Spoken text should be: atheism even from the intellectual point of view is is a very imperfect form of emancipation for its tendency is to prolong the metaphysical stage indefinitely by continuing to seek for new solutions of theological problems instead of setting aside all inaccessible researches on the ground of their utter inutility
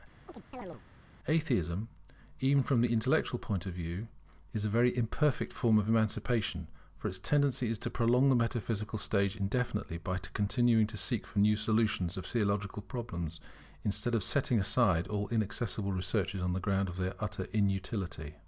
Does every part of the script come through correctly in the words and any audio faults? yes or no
no